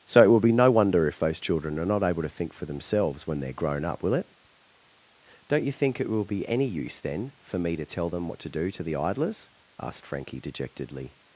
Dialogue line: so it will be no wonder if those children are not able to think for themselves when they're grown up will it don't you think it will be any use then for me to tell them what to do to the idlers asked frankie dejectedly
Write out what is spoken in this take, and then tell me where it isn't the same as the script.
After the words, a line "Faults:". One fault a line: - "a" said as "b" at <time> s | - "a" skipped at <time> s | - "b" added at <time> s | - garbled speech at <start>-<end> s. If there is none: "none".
so it will be no wonder if those children are not able to think for themselves when they're grown up will it don't you think it will be any use then for me to tell them what to do to the idlers asked frankie dejectedly
Faults:
none